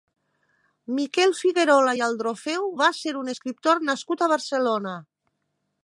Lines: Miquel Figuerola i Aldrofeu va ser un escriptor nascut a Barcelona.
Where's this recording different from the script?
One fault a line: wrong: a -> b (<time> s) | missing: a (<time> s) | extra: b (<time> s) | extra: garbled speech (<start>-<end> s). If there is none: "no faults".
no faults